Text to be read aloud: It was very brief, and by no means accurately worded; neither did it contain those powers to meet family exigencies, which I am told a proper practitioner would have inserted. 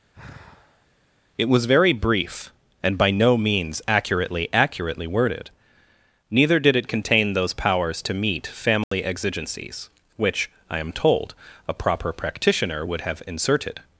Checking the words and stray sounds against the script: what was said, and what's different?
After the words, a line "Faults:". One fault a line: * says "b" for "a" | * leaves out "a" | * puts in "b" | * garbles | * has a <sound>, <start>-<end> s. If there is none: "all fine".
It was very brief, and by no means accurately accurately worded; neither did it contain those powers to meet family exigencies, which I am told a proper practitioner would have inserted.
Faults:
* has a sigh, 0.1-0.9 s
* puts in "accurately"
* has a dropout, 8.8-8.9 s